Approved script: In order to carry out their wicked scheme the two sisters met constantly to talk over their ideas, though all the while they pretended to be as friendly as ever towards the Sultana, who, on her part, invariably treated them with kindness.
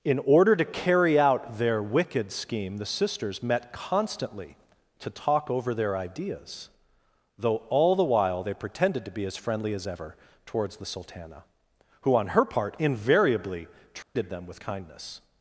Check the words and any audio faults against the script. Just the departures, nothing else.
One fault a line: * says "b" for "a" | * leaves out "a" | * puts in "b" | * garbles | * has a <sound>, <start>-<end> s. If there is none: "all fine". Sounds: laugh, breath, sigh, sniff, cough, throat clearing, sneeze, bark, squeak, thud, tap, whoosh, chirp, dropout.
* leaves out "two"
* has a dropout, 14.0-14.2 s